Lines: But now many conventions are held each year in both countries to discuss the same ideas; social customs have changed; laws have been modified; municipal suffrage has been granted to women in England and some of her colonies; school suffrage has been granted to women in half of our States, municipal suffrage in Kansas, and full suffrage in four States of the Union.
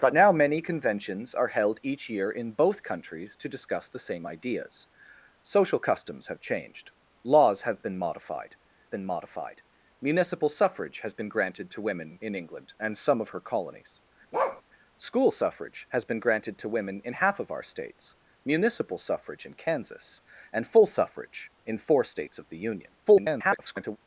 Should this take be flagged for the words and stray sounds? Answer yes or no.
yes